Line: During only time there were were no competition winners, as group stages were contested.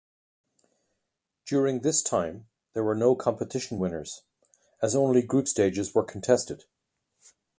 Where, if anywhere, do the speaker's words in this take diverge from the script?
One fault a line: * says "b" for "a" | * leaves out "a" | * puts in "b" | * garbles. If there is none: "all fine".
* says "this" for "only"
* leaves out "were"
* puts in "only"